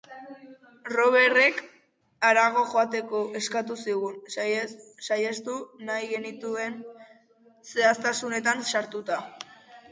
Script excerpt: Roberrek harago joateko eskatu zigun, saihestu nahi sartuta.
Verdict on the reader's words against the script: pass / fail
fail